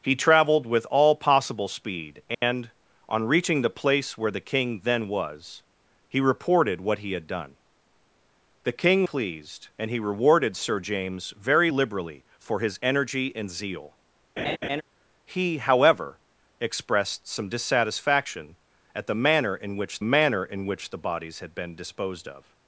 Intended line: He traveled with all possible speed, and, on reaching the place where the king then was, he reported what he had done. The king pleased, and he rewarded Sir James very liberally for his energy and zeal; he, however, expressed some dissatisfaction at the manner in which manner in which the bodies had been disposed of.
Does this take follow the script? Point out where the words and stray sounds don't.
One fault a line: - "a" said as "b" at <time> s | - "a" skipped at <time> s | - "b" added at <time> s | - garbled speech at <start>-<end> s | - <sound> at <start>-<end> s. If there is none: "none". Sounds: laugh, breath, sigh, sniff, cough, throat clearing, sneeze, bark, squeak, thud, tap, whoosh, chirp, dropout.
- dropout at 2.3-2.4 s
- laugh at 14.4-14.8 s